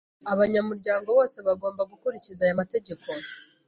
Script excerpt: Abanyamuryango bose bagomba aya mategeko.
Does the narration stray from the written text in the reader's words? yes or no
yes